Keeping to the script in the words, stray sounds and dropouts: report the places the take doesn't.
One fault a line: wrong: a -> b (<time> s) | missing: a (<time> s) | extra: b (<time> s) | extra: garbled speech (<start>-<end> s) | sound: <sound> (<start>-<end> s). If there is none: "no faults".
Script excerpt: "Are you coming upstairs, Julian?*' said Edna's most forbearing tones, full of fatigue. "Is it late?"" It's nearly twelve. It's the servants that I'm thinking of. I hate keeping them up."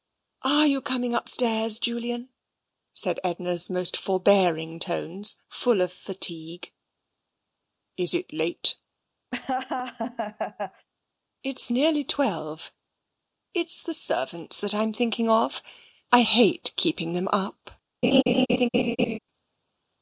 sound: laugh (9.3-10.9 s)
sound: laugh (18.0-19.2 s)